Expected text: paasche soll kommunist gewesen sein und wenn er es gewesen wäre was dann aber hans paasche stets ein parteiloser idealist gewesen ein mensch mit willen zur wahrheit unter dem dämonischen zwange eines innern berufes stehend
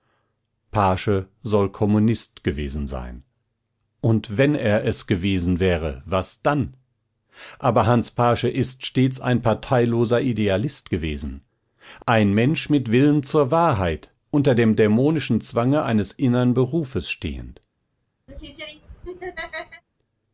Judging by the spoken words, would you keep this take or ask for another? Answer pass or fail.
fail